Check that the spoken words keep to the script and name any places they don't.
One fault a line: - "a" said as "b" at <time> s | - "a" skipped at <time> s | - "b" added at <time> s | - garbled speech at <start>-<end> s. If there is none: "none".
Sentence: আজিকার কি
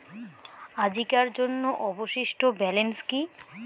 - "জন্য অবশিষ্ট ব্যালেন্স" added at 1.3 s